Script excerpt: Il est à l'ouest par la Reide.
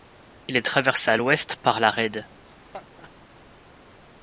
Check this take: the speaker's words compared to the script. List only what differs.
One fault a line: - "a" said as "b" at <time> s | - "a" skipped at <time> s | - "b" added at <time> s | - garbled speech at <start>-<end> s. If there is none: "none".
- "traversé" added at 0.6 s